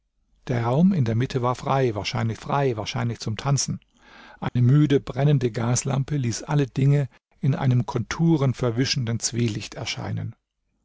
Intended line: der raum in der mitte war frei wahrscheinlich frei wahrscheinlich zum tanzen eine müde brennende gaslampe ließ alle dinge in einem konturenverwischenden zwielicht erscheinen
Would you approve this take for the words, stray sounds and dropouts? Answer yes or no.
no